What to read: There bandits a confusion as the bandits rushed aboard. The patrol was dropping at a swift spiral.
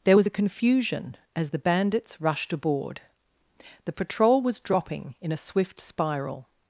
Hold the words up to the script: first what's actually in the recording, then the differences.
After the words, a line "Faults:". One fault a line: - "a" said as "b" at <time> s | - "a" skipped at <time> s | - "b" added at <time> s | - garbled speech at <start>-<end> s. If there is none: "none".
There was a confusion as the bandits rushed aboard. The patrol was dropping in a swift spiral.
Faults:
- "bandits" said as "was" at 0.1 s
- "at" said as "in" at 5.2 s